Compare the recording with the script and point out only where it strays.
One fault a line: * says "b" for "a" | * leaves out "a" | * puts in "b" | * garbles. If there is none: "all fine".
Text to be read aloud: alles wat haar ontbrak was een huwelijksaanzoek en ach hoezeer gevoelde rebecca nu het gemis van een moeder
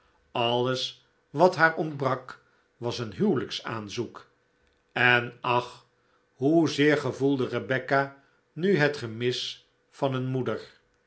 all fine